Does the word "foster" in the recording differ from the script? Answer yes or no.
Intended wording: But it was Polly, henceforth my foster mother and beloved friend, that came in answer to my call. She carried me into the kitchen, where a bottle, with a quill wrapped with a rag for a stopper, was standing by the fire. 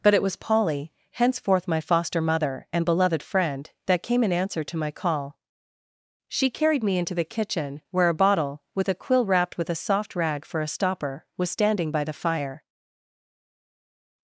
no